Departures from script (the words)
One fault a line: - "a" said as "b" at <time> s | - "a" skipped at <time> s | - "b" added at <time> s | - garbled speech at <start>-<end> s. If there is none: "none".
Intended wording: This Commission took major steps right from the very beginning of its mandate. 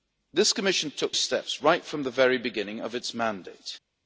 - "major" skipped at 1.1 s